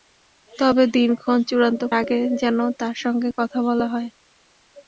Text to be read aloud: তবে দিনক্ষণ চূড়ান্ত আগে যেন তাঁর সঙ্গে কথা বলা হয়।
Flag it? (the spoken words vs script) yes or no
no